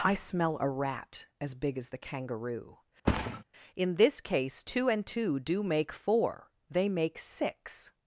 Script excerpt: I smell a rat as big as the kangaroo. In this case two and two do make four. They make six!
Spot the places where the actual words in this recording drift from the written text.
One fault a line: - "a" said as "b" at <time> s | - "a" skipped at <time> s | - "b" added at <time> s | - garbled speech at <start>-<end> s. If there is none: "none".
none